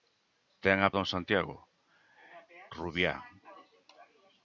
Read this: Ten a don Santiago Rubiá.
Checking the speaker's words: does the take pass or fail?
pass